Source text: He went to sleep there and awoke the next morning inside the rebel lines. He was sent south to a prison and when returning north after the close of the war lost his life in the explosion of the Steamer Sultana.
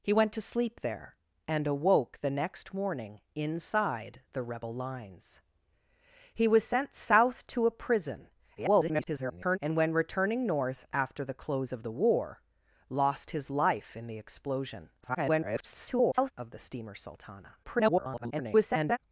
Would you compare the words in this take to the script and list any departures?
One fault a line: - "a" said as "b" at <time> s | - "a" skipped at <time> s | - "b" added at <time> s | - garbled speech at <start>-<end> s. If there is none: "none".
- garbled speech at 8.6-9.6 s
- garbled speech at 15.0-16.3 s
- garbled speech at 17.6-19.0 s